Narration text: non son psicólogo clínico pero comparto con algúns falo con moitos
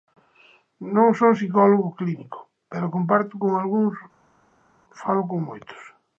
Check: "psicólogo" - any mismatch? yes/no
no